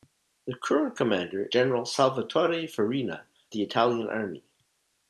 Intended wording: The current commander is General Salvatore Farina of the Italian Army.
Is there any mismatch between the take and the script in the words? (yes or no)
yes